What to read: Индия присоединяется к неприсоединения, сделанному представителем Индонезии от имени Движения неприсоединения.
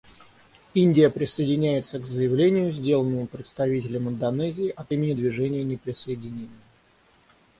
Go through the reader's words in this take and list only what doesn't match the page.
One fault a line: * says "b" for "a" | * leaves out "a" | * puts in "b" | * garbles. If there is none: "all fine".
* says "заявлению" for "неприсоединения"